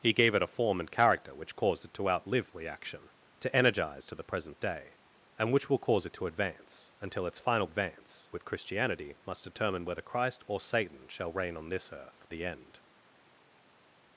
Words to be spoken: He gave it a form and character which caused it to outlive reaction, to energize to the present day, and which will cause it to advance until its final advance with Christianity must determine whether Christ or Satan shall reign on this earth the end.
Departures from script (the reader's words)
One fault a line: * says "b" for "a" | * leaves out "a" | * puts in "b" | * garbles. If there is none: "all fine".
all fine